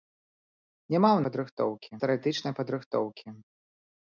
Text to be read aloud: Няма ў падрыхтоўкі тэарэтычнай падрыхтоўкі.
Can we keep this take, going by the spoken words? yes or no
yes